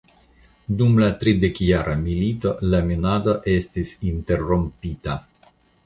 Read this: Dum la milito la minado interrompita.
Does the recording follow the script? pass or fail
fail